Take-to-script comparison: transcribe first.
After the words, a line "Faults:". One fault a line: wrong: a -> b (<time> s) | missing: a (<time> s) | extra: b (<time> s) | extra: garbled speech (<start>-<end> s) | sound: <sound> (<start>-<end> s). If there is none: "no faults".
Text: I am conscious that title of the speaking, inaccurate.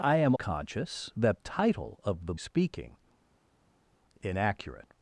I am conscious that title of the speaking, inaccurate.
Faults:
no faults